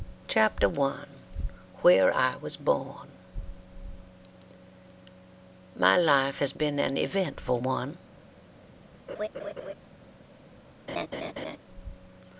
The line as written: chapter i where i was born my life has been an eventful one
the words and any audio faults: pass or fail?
fail